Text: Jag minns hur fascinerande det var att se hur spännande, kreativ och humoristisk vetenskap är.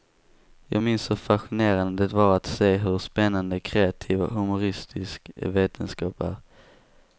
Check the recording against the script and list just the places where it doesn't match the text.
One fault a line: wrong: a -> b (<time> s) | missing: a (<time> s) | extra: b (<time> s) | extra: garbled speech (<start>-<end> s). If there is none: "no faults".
no faults